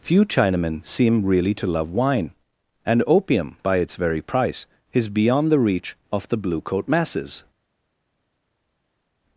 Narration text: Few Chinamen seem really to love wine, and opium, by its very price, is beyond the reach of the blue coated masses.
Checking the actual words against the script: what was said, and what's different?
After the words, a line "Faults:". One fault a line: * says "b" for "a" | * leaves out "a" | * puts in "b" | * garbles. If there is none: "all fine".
Few Chinamen seem really to love wine, and opium, by its very price, is beyond the reach of the blue coat masses.
Faults:
* says "coat" for "coated"